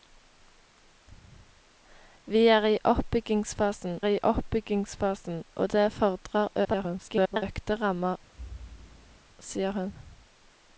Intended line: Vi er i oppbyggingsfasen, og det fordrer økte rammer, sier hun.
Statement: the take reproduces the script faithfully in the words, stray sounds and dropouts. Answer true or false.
false